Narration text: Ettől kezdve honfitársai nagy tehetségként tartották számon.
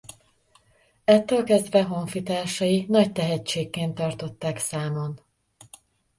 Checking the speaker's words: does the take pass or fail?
pass